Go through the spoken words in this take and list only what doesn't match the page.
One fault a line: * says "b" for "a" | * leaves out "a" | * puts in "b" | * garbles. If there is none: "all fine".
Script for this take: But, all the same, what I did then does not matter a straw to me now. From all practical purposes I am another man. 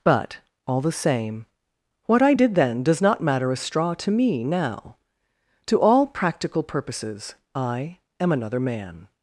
* says "To" for "From"